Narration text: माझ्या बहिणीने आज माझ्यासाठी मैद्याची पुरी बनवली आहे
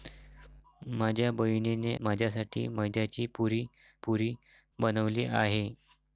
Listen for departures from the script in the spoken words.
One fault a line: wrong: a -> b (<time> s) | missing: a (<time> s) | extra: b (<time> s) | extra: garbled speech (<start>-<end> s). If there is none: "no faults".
missing: आज (1.9 s)
extra: पुरी (4.0 s)